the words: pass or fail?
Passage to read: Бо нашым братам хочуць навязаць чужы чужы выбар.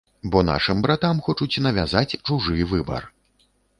fail